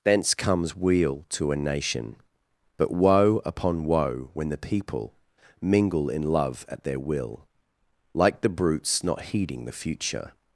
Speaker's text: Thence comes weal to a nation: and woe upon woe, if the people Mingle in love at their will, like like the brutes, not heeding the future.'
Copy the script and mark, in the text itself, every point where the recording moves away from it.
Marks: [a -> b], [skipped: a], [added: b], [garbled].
Thence comes weal to a nation: [and -> but] woe upon woe, [if -> when] the people Mingle in love at their will, like [skipped: like] the brutes, not heeding the future.'